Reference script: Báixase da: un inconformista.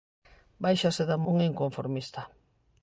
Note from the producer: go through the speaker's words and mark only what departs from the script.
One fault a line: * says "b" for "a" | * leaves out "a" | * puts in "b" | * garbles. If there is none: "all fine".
all fine